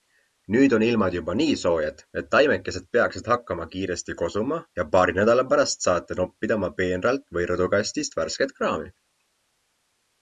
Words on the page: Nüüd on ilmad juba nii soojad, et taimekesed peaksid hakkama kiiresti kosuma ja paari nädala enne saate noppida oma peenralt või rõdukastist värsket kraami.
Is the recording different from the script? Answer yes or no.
yes